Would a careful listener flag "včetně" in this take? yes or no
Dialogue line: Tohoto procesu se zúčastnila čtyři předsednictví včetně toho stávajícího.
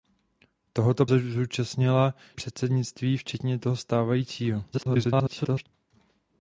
no